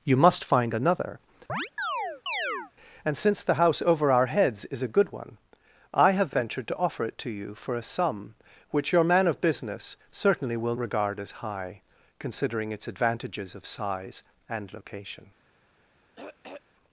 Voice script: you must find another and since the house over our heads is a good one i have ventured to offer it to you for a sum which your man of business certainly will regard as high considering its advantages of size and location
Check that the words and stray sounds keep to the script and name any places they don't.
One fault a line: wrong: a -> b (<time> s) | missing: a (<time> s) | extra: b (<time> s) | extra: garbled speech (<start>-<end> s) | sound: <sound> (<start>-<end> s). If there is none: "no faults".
sound: chirp (1.5-2.7 s)
sound: throat clearing (16.2-16.6 s)